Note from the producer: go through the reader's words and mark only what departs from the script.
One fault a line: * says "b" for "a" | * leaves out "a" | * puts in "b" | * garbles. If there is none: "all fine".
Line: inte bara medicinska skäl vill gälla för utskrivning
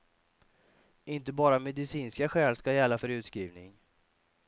* says "ska" for "vill"